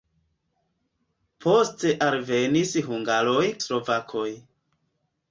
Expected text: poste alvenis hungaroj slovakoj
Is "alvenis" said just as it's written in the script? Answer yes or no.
yes